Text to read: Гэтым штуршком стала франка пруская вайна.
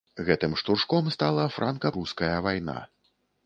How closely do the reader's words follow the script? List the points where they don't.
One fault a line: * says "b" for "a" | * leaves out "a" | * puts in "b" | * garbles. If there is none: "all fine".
all fine